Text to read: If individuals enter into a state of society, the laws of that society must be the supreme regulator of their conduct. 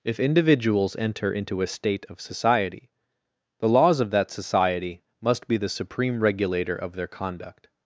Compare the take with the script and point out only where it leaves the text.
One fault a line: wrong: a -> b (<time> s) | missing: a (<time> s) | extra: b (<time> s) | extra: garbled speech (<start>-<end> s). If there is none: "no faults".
no faults